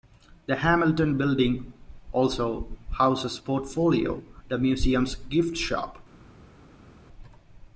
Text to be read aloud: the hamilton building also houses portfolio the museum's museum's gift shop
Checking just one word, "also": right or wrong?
right